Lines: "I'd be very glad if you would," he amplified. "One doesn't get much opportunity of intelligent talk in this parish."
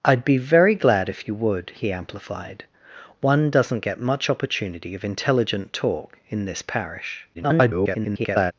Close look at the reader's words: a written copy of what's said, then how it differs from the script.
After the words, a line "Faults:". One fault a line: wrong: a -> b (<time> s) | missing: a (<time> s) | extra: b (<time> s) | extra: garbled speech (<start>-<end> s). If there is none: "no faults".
"I'd be very glad if you would," he amplified. "One doesn't get much opportunity of intelligent talk in this parish." [garbled]
Faults:
extra: garbled speech (7.3-8.5 s)